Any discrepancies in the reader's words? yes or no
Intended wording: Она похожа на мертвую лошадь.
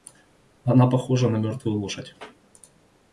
no